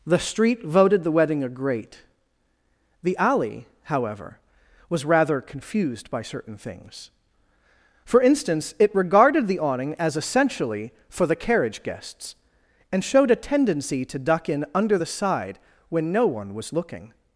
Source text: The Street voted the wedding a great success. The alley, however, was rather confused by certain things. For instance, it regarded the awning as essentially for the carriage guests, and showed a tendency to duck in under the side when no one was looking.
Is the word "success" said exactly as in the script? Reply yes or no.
no